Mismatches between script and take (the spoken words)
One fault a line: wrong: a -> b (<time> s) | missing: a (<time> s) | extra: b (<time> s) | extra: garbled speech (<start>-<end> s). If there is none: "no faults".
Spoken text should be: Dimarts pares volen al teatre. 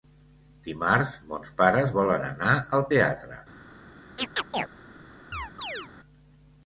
extra: mons (1.3 s)
extra: anar (2.3 s)